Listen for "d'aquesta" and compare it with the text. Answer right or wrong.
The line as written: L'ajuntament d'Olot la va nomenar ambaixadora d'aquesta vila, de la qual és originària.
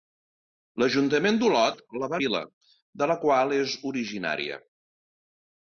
wrong